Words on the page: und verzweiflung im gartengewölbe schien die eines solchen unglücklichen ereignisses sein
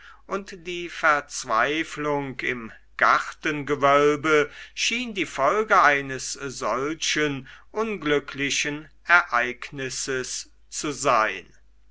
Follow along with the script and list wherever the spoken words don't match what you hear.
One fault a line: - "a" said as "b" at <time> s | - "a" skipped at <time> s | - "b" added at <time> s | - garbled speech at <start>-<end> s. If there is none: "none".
- "die" added at 0.7 s
- "folge" added at 5.3 s
- "zu" added at 10.7 s